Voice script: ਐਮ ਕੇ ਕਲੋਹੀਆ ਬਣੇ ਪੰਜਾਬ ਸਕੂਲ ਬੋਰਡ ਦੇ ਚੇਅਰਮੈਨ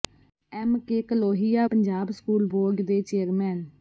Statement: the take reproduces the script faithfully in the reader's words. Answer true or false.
false